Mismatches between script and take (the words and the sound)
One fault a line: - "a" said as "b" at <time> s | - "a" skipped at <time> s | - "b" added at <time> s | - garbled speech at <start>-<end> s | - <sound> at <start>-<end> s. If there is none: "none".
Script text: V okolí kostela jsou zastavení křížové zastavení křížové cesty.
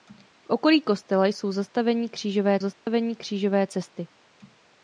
- dropout at 2.7-2.9 s